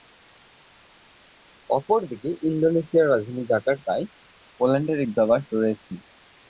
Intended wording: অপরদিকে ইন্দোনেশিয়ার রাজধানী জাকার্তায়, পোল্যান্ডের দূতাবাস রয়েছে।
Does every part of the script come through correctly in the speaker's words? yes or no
yes